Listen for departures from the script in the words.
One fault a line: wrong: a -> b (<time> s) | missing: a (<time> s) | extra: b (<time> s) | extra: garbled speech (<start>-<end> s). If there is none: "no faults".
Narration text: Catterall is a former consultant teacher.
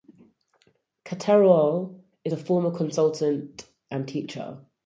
extra: and (3.9 s)